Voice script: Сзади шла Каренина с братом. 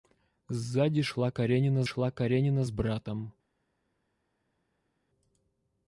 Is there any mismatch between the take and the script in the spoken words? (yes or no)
yes